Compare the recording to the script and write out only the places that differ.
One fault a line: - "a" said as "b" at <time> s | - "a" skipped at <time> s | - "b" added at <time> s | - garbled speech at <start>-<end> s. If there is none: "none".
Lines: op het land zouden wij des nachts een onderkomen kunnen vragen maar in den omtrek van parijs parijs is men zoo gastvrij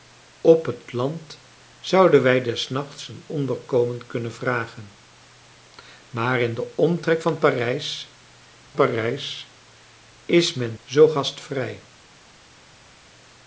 none